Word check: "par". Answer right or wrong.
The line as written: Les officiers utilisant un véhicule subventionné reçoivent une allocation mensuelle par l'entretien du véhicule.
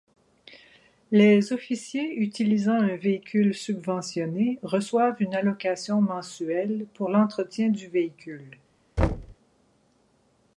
wrong